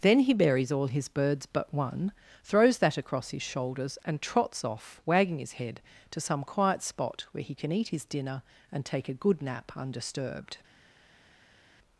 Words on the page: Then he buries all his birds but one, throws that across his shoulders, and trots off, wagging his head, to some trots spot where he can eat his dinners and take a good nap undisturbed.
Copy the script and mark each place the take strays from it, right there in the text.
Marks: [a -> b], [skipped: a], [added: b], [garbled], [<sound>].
Then he buries all his birds but one, throws that across his shoulders, and trots off, wagging his head, to some [trots -> quiet] spot where he can eat his [dinners -> dinner] and take a good nap undisturbed.